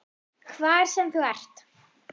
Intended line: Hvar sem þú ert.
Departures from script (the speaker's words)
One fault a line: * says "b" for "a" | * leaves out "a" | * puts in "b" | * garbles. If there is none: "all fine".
all fine